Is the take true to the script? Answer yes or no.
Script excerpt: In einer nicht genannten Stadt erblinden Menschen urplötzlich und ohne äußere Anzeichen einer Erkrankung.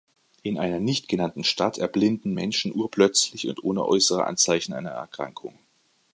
yes